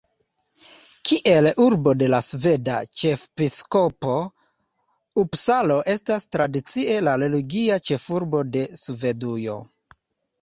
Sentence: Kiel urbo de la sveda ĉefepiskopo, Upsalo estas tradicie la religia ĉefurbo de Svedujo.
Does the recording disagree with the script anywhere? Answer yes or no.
no